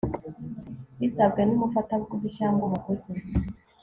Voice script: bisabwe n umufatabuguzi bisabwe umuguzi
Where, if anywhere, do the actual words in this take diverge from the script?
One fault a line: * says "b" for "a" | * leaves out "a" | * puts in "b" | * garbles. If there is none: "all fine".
* says "cyangwa" for "bisabwe"